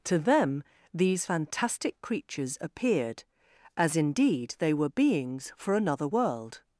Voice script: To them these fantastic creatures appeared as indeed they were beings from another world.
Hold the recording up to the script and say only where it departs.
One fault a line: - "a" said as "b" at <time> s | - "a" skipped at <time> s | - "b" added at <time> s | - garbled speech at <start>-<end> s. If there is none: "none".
- "from" said as "for" at 5.5 s